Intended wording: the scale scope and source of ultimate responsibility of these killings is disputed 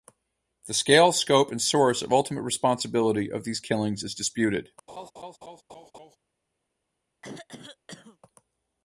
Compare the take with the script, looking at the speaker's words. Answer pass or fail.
pass